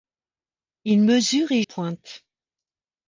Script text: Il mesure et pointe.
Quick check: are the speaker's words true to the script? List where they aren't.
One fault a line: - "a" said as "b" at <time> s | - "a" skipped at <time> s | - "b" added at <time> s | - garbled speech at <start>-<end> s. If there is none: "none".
none